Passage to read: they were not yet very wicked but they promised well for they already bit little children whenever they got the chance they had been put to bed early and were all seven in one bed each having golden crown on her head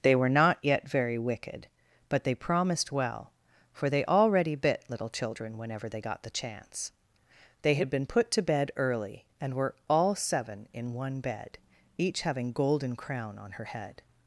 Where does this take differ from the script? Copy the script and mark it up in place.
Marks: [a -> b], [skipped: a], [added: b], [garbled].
they were not yet very wicked but they promised well for they already bit little children whenever they got the chance they had been put to bed early and were all seven in one bed each having golden crown on her head